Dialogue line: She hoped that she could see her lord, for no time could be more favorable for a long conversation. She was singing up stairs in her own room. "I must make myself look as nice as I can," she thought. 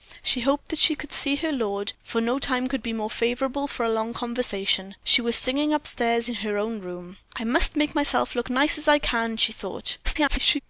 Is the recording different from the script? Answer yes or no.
yes